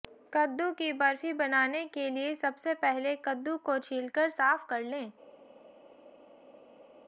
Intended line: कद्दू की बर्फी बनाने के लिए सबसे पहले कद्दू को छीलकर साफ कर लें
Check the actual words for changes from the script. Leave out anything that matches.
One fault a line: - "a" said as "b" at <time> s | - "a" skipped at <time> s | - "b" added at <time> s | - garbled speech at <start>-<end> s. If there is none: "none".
none